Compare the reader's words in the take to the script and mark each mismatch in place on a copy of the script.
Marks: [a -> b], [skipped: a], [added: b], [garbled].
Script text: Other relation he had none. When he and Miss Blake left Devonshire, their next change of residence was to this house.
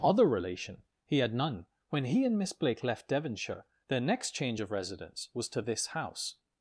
Other relation he had none. When he and Miss Blake left Devonshire, their next change of residence was to this house.